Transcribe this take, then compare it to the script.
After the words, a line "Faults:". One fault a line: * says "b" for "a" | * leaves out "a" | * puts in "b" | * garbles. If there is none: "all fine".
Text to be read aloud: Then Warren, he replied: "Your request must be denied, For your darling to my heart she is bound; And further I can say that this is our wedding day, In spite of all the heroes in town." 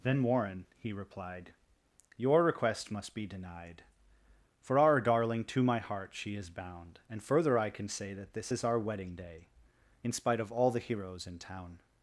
Then Warren, he replied: "Your request must be denied, For our darling to my heart she is bound; And further I can say that this is our wedding day, In spite of all the heroes in town."
Faults:
* says "our" for "your"